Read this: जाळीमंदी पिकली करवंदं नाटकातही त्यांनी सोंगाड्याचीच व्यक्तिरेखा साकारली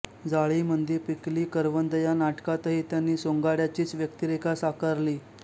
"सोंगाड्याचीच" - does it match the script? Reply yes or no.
yes